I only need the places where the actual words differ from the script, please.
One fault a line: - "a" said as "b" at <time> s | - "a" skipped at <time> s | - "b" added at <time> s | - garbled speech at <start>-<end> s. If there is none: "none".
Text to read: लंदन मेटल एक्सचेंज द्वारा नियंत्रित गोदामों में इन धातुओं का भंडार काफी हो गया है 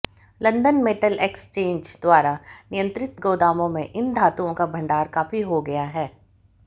none